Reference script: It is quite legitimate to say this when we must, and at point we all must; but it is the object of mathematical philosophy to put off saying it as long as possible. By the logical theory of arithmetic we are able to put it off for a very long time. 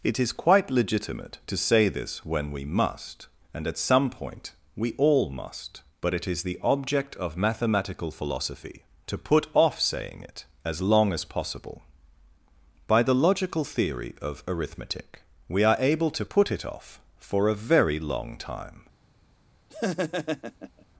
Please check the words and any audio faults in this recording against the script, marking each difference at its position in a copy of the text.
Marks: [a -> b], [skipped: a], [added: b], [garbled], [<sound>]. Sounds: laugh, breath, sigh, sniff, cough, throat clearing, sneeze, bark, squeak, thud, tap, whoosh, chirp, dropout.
It is quite legitimate to say this when we must, and at [added: some] point we all must; but it is the object of mathematical philosophy to put off saying it as long as possible. By the logical theory of arithmetic we are able to put it off for a very long time. [laugh]